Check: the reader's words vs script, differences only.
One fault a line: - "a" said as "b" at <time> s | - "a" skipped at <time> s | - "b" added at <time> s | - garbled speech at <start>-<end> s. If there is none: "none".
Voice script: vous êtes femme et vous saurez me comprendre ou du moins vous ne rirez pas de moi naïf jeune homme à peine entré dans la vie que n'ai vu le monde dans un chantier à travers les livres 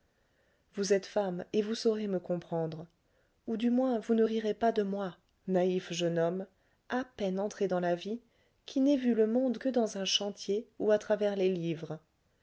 - "que" said as "qui" at 8.6 s
- "que" added at 9.6 s
- "ou" added at 10.8 s